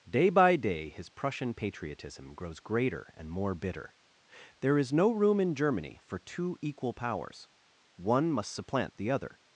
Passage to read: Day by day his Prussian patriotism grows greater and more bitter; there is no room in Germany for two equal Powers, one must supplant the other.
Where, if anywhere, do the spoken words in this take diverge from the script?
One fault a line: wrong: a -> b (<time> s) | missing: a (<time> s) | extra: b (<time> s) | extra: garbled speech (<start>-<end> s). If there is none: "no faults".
no faults